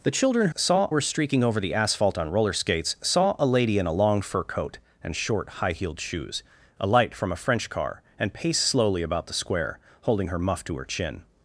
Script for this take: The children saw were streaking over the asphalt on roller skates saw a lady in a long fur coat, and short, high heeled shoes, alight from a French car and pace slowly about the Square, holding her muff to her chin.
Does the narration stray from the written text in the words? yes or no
no